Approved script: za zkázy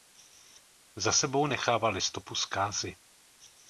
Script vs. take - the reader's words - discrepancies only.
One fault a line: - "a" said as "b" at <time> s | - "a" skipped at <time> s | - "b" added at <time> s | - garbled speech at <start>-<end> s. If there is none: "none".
- "sebou nechávali stopu" added at 1.1 s